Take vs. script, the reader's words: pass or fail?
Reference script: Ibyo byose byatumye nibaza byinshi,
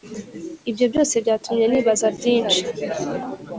pass